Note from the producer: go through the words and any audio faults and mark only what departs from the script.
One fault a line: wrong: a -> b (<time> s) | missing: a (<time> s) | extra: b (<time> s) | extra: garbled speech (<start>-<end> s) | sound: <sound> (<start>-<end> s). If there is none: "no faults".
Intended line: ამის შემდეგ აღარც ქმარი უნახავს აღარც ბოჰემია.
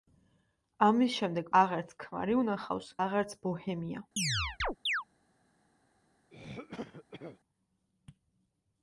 sound: chirp (4.2-5.0 s)
sound: throat clearing (6.3-7.4 s)